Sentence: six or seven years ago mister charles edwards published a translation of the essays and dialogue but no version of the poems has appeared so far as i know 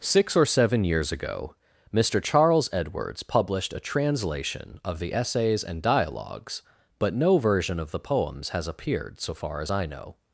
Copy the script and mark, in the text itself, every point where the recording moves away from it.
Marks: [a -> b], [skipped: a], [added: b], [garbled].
six or seven years ago mister charles edwards published a translation of the essays and [dialogue -> dialogues] but no version of the poems has appeared so far as i know